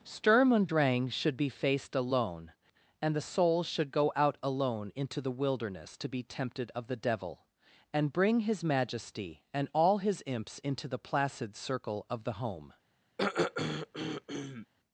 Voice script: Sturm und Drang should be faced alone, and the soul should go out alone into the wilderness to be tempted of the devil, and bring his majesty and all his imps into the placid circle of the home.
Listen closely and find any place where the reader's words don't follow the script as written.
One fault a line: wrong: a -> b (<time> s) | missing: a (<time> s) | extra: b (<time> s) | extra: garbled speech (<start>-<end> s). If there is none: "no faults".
no faults